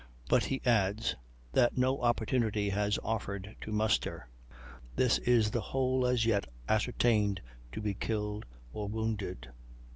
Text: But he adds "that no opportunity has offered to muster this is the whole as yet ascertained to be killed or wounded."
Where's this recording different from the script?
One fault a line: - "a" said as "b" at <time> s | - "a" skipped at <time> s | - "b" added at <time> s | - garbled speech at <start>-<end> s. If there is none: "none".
none